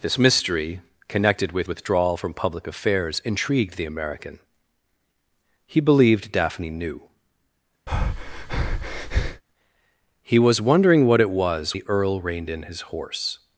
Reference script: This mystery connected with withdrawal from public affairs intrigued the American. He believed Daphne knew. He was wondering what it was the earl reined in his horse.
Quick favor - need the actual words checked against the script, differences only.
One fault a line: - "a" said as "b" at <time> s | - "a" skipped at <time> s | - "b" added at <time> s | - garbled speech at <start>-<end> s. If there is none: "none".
none